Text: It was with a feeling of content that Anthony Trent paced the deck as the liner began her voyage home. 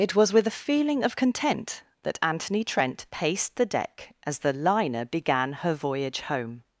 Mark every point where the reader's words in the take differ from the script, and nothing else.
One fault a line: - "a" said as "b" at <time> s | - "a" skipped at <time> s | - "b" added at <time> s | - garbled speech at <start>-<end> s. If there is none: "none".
none